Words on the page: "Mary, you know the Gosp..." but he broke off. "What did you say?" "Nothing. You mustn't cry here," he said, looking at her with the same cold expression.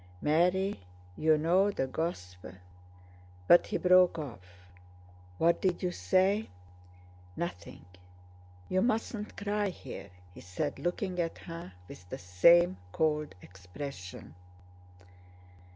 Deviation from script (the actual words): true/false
false